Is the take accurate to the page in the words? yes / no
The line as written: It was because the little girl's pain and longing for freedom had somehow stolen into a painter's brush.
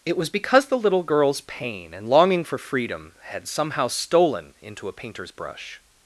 yes